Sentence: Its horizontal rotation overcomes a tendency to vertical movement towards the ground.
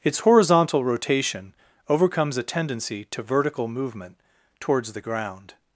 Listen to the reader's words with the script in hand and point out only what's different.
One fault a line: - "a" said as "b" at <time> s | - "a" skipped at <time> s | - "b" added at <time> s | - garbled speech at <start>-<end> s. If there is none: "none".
none